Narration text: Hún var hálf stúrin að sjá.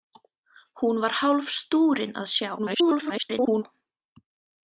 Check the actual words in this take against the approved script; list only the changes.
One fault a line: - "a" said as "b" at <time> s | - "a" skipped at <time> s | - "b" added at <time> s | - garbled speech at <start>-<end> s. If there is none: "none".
- garbled speech at 2.6-3.6 s